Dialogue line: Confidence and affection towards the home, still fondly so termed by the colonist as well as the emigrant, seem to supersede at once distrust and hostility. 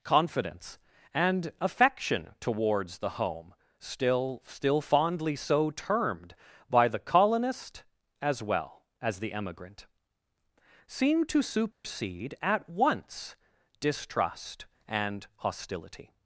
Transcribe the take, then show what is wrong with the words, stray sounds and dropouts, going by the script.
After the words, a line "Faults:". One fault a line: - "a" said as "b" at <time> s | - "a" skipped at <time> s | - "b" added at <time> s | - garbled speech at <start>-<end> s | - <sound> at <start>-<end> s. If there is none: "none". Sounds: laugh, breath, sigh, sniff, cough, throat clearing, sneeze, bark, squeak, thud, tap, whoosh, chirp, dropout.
Confidence and affection towards the home, still still fondly so termed by the colonist as well as the emigrant, seem to supersede at once distrust and hostility.
Faults:
- "still" added at 4.5 s
- dropout at 11.7-11.8 s